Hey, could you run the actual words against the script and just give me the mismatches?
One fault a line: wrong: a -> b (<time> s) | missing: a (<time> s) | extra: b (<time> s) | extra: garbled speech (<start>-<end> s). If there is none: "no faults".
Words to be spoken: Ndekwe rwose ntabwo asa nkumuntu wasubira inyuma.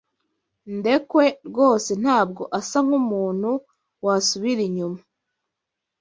no faults